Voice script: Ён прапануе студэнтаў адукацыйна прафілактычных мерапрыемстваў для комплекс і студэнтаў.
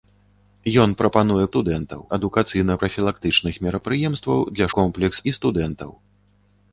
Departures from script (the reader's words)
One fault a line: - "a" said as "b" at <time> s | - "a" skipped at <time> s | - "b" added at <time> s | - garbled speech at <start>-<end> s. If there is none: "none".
none